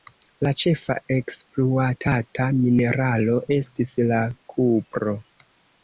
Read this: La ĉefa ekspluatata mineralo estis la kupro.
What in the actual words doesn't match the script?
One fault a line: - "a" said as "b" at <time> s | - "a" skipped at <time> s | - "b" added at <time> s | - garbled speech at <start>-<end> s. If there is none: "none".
none